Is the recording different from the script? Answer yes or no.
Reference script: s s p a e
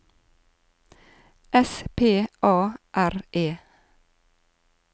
yes